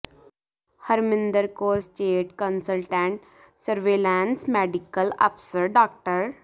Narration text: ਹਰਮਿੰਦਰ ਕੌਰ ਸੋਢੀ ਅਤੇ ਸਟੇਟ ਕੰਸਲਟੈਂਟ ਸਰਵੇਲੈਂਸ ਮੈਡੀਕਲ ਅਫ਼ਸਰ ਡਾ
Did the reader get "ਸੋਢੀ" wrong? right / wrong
wrong